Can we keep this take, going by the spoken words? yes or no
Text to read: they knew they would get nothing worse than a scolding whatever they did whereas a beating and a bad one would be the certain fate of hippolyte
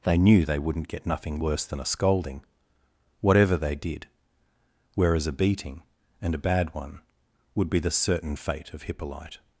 no